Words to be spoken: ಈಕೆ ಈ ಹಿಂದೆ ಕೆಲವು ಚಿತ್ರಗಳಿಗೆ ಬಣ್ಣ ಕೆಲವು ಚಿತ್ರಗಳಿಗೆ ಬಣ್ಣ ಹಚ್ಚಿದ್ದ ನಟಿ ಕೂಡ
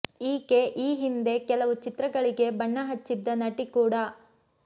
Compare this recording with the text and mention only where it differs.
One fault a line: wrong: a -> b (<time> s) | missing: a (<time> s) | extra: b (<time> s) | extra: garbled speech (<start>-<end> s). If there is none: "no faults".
missing: ಕೆಲವು ಚಿತ್ರಗಳಿಗೆ ಬಣ್ಣ (2.8 s)